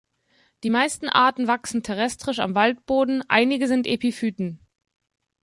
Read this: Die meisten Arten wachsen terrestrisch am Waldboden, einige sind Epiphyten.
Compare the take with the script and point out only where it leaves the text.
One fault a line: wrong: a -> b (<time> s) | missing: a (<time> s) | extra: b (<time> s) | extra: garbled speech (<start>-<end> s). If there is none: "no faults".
no faults